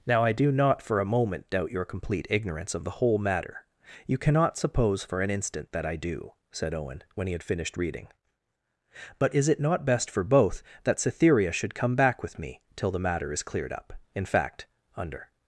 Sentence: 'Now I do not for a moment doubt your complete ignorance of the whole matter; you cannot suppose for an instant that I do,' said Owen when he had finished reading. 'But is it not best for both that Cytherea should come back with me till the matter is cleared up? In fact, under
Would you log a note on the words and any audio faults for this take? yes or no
no